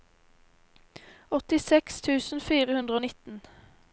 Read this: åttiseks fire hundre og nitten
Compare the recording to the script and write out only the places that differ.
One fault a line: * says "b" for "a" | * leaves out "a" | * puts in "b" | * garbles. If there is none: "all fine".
* puts in "tusen"